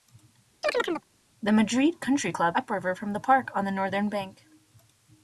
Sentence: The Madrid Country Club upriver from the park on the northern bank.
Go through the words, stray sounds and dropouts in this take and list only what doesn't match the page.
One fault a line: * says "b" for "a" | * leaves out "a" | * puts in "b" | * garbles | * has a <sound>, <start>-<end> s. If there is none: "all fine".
* has a chirp, 0.6-1.0 s